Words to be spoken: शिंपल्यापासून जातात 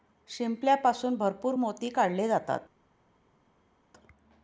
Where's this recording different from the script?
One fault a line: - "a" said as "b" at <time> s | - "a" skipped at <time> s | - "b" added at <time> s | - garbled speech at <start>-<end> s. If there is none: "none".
- "भरपूर मोती काढले" added at 1.1 s